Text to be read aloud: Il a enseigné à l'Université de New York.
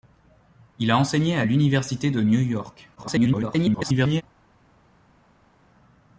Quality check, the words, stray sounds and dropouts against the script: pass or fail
fail